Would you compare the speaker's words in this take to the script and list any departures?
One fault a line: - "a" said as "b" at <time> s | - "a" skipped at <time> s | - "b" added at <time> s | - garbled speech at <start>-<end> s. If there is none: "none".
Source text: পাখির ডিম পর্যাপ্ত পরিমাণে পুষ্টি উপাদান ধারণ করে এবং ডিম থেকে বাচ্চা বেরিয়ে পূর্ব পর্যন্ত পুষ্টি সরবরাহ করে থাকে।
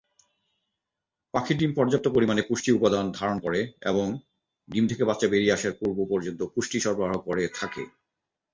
- "আসার" added at 5.6 s